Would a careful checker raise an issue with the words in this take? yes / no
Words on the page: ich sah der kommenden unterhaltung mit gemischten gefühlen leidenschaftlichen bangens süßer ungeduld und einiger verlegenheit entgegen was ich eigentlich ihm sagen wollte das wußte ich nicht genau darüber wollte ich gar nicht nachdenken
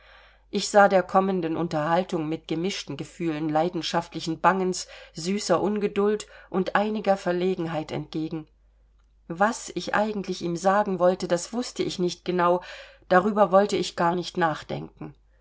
no